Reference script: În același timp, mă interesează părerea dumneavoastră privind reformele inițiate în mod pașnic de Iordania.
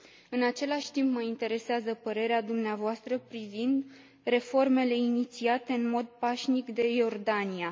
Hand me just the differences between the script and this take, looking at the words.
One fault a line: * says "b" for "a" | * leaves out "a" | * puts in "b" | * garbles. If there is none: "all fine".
all fine